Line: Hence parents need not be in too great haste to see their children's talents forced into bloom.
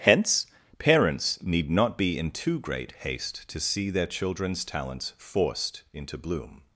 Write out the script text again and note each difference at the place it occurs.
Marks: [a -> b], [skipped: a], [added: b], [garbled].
Hence parents need not be in too great haste to see their children's talents forced into bloom.